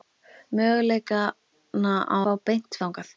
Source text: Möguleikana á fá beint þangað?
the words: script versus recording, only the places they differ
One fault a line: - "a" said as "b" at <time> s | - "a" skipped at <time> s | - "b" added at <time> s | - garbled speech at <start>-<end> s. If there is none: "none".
none